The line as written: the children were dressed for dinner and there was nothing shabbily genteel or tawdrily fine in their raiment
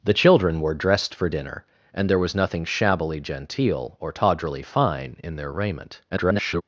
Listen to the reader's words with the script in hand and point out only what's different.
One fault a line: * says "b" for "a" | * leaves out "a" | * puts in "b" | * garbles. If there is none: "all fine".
* garbles